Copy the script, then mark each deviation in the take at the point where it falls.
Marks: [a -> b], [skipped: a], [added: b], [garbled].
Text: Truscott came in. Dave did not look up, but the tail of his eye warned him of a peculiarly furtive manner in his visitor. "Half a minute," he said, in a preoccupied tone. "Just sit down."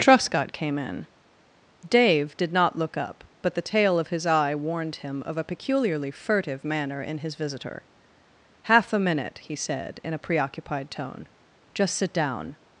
Truscott came in. Dave did not look up, but the tail of his eye warned him of a peculiarly furtive manner in his visitor. "Half a minute," he said, in a preoccupied tone. "Just sit down."